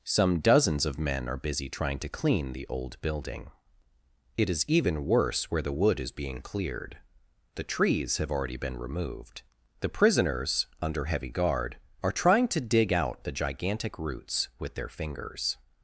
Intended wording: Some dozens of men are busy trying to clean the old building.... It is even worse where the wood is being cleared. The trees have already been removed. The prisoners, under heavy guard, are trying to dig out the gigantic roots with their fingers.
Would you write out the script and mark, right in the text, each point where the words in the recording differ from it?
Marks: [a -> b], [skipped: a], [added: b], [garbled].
Some dozens of men are busy trying to clean the old building.... It is even worse where the wood is being cleared. The trees have already been removed. The prisoners, under heavy guard, are trying to dig out the gigantic roots with their fingers.